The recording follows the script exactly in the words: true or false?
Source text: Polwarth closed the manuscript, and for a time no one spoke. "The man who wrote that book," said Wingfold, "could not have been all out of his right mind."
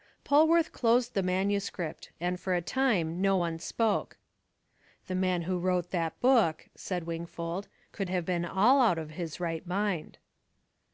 false